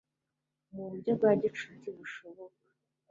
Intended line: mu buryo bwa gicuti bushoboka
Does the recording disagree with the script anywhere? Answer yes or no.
no